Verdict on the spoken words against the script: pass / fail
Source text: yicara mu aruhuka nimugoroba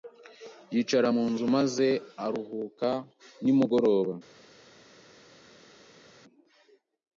fail